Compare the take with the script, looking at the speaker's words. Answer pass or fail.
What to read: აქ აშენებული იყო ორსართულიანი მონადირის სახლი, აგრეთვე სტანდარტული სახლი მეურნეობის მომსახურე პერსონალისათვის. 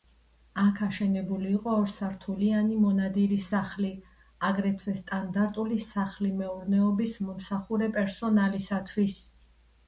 pass